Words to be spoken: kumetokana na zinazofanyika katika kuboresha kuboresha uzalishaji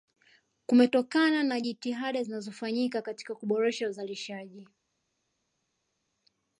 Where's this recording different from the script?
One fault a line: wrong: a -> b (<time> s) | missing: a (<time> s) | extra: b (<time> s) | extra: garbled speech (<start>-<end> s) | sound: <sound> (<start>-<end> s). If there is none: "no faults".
extra: jitihada (1.6 s)
missing: kuboresha (3.9 s)